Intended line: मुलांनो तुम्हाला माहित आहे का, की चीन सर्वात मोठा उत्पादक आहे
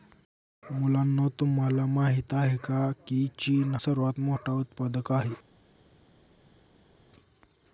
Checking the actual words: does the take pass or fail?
pass